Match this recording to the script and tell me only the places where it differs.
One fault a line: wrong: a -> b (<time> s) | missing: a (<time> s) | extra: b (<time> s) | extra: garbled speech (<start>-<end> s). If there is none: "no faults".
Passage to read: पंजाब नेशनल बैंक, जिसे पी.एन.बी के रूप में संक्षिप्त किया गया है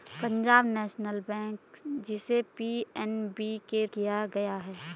missing: रूप में संक्षिप्त (3.9 s)